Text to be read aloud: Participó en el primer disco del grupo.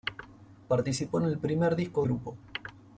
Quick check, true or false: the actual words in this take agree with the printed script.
false